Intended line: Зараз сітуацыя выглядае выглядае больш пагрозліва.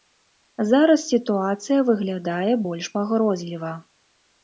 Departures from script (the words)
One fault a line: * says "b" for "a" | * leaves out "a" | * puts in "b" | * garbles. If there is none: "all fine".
* leaves out "выглядае"